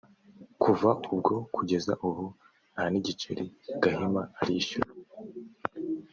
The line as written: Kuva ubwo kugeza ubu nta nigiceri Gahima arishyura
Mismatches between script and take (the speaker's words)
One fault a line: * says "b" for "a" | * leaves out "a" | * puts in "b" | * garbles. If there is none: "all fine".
all fine